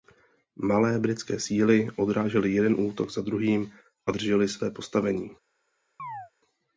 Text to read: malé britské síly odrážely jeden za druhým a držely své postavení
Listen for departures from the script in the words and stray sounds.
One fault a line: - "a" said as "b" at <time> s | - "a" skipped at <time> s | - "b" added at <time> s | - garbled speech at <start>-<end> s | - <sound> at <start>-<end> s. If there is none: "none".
- "útok" added at 2.8 s
- chirp at 6.0-6.3 s